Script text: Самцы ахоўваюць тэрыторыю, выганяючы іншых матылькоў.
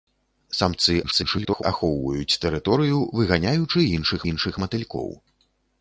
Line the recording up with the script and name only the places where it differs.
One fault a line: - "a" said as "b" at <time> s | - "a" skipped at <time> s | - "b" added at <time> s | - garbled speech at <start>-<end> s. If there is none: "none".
- garbled speech at 1.0-1.6 s
- "іншых" added at 4.3 s